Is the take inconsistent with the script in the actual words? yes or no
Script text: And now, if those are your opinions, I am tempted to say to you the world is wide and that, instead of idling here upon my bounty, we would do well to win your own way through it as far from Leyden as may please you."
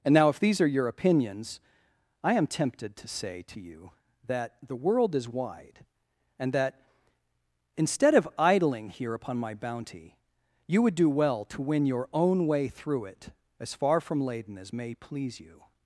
yes